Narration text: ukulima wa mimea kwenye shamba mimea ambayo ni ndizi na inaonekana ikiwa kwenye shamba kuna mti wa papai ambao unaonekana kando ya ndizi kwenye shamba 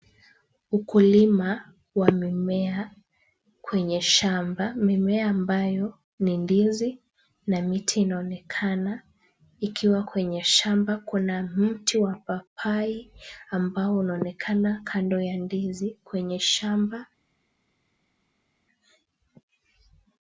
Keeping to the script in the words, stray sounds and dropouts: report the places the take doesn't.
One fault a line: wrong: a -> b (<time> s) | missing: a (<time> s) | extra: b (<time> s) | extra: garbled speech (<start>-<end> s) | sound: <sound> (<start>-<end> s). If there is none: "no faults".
extra: miti (7.6 s)